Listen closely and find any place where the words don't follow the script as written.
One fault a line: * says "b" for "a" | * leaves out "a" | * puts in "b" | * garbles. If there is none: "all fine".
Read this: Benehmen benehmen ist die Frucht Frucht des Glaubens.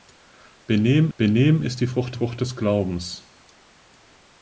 all fine